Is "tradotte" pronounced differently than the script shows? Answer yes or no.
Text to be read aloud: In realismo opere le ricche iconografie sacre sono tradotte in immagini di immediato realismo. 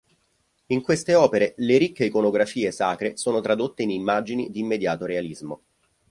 no